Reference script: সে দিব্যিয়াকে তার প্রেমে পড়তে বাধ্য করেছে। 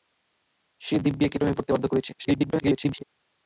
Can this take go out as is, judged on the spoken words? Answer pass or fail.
fail